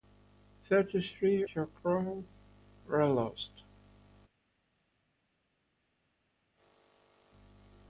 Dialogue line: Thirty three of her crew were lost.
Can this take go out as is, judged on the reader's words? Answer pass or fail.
fail